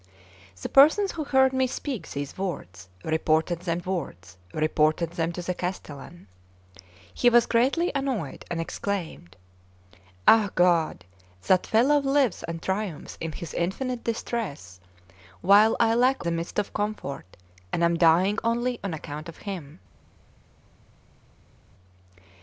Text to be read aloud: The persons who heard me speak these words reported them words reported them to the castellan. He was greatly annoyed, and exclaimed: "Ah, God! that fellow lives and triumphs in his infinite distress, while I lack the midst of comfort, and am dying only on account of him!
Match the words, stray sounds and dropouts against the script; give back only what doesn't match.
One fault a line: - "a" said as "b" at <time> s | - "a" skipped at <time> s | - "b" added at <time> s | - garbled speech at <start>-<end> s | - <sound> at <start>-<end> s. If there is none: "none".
none